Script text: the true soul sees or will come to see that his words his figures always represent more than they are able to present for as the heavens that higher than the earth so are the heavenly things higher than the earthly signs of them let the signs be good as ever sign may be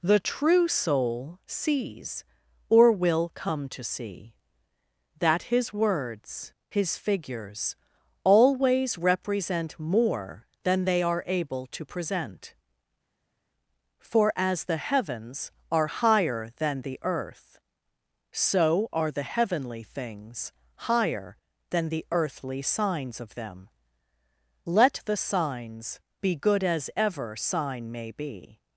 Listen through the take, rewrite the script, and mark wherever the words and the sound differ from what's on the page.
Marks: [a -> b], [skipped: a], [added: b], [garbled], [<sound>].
the true soul sees or will come to see that his words his figures always represent more than they are able to present for as the heavens [that -> are] higher than the earth so are the heavenly things higher than the earthly signs of them let the signs be good as ever sign may be